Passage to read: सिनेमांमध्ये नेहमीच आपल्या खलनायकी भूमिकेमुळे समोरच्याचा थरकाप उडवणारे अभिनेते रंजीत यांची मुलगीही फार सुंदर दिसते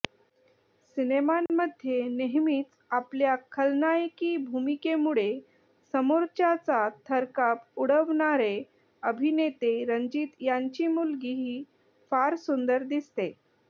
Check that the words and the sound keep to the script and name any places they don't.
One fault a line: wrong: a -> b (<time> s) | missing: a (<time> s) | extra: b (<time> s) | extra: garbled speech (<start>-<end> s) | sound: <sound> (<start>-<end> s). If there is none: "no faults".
sound: dropout (1.5-1.5 s)